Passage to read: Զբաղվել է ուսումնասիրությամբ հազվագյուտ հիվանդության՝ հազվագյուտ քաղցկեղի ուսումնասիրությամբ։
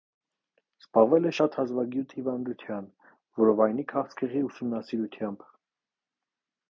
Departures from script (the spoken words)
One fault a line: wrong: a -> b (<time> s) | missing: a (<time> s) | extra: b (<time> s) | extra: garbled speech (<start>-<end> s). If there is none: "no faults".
wrong: ուսումնասիրությամբ -> շատ (1.4 s)
wrong: հազվագյուտ -> որովայնի (3.4 s)